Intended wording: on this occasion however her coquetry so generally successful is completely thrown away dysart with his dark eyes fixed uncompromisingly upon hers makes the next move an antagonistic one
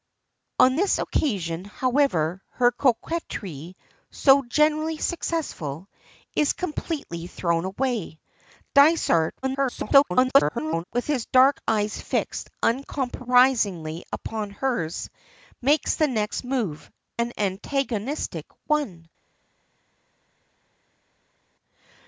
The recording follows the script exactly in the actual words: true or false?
false